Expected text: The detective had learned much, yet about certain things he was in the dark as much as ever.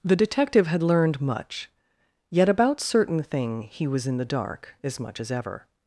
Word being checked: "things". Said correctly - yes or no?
no